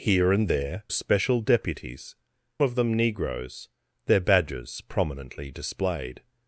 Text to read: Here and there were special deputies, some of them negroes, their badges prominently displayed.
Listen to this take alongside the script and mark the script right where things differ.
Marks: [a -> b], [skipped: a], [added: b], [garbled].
Here and there [skipped: were] special deputies, [skipped: some] of them negroes, their badges prominently displayed.